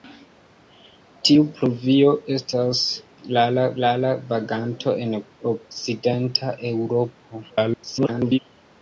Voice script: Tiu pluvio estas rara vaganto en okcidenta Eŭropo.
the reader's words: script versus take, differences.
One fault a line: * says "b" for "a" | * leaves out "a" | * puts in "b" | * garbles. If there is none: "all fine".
* puts in "rara"
* garbles